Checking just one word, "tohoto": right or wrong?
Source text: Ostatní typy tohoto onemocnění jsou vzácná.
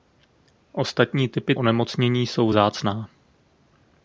wrong